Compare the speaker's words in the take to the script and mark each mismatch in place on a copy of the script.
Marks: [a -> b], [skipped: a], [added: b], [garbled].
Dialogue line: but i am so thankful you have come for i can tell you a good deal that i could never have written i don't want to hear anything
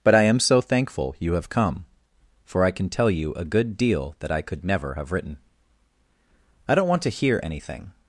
but i am so thankful you have come for i can tell you a good deal that i could never have written i don't want to hear anything